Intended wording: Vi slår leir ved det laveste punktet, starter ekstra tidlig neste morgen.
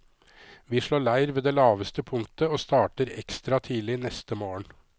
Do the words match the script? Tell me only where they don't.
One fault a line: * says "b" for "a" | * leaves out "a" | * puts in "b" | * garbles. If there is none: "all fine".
* puts in "og"